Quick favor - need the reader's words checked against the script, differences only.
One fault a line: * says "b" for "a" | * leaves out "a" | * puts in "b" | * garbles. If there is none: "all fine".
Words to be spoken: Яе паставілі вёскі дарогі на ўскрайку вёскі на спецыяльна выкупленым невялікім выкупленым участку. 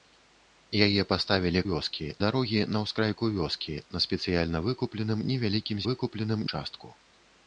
all fine